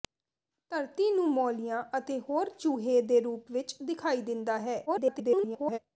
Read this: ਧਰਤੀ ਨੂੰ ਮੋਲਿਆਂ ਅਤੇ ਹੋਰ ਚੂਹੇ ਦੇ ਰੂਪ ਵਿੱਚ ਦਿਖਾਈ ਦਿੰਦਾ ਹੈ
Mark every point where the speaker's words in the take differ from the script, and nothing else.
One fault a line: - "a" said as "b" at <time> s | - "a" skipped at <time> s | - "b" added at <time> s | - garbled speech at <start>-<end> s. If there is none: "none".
- garbled speech at 4.9-5.8 s